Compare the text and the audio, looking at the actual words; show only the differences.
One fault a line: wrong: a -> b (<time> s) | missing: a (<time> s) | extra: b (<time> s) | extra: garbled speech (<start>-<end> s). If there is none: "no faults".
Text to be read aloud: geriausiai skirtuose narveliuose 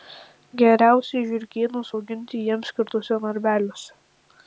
extra: žiurkėnus auginti jiems (1.3 s)